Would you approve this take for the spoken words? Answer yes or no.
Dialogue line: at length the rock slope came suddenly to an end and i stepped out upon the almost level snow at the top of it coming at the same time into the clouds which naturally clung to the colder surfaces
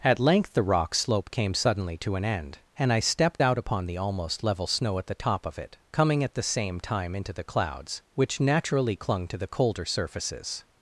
yes